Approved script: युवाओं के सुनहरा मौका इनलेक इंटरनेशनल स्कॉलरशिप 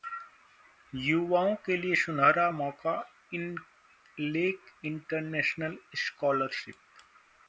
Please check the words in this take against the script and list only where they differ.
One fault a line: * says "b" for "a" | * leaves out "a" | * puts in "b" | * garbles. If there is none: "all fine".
* puts in "लिए"